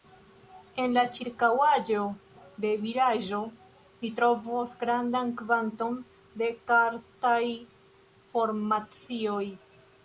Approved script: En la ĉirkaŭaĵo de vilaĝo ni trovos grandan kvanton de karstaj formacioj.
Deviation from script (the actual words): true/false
false